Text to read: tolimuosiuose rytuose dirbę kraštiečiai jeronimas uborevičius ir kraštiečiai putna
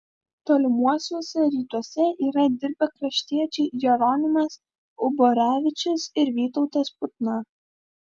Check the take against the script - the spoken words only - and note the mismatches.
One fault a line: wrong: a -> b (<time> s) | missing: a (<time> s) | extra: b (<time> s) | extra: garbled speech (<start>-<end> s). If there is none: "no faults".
extra: yra (2.3 s)
wrong: kraštiečiai -> vytautas (6.4 s)